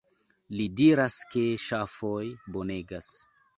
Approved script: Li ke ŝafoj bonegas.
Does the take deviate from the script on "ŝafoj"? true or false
false